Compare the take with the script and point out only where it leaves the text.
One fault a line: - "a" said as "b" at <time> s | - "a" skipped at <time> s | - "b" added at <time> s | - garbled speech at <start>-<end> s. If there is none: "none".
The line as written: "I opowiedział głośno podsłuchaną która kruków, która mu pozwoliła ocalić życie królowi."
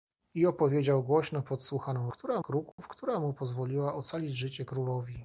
none